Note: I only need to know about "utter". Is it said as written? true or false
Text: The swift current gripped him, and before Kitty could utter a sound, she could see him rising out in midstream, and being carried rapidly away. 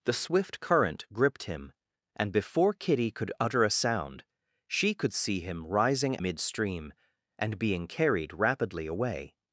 true